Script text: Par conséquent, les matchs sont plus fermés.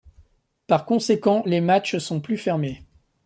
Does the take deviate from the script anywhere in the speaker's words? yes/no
no